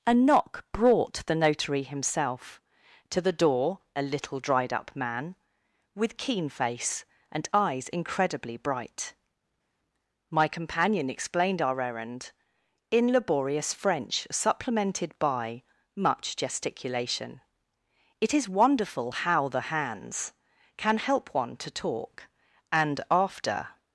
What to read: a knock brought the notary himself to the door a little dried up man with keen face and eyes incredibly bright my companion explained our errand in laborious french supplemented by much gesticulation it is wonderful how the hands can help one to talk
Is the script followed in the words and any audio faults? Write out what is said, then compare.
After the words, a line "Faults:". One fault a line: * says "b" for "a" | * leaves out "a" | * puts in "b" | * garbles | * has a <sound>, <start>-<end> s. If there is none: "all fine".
a knock brought the notary himself to the door a little dried up man with keen face and eyes incredibly bright my companion explained our errand in laborious french supplemented by much gesticulation it is wonderful how the hands can help one to talk and after
Faults:
* puts in "and after"